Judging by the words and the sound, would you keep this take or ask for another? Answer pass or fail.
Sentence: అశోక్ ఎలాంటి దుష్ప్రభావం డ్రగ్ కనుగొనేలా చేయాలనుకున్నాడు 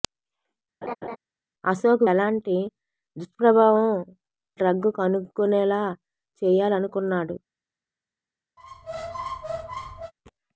fail